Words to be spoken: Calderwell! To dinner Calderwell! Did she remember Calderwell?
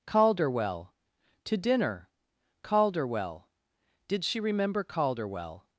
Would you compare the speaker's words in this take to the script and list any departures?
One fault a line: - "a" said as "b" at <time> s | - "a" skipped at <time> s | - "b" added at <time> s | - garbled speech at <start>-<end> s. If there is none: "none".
none